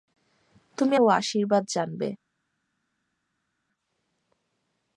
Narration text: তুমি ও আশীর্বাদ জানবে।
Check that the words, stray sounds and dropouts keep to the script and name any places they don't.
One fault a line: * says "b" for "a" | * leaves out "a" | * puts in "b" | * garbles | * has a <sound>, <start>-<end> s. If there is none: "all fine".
all fine